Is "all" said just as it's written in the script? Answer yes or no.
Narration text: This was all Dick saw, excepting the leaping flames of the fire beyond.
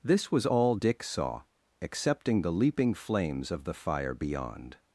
yes